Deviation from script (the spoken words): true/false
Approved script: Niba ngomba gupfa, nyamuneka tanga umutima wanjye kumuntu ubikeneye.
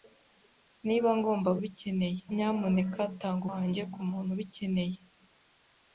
true